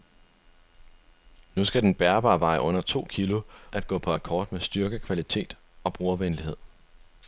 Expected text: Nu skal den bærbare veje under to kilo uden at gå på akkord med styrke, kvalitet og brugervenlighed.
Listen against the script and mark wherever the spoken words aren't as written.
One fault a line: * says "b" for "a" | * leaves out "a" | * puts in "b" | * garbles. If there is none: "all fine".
* leaves out "uden"